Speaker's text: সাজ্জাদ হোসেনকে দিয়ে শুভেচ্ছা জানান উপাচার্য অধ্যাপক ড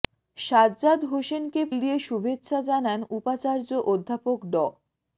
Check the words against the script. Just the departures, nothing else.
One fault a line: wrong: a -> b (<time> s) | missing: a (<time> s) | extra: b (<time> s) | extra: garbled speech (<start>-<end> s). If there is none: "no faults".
no faults